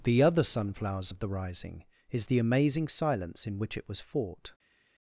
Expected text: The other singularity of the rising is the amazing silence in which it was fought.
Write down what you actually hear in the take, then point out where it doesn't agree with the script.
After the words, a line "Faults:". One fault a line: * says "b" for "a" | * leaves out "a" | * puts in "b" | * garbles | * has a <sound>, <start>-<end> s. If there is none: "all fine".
The other sunflowers of the rising is the amazing silence in which it was fought.
Faults:
* says "sunflowers" for "singularity"